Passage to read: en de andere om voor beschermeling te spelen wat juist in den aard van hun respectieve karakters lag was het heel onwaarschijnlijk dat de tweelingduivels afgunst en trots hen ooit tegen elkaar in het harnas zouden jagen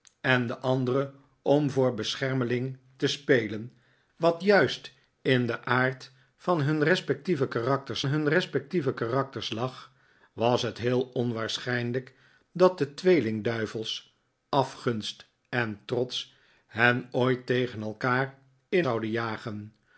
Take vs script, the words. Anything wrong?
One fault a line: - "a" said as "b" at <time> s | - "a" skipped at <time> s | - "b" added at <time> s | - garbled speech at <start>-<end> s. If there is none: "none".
- "hun respectieve karakters" added at 8.1 s
- "het harnas" skipped at 18.9 s